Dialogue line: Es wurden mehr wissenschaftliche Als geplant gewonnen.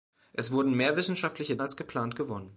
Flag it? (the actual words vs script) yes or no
no